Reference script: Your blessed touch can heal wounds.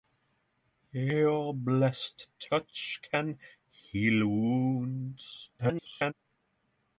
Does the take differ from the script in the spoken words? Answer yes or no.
yes